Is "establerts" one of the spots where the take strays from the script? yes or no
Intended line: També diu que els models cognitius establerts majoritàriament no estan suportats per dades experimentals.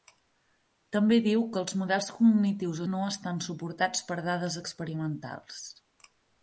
yes